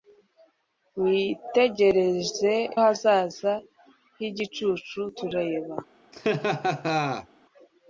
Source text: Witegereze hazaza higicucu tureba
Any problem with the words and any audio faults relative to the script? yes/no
yes